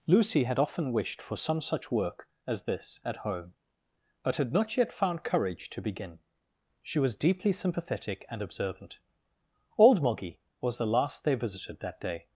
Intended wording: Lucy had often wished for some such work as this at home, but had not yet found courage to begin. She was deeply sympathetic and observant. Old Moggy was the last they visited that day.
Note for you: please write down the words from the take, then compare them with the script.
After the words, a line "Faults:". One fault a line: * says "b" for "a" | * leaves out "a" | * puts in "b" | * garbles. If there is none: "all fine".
Lucy had often wished for some such work as this at home, but had not yet found courage to begin. She was deeply sympathetic and observant. Old Moggy was the last they visited that day.
Faults:
all fine